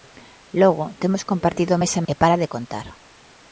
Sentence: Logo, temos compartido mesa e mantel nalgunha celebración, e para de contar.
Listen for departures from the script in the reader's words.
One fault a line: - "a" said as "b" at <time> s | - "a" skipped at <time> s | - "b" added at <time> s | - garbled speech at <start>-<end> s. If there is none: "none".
- "mantel nalgunha celebración" skipped at 2.1 s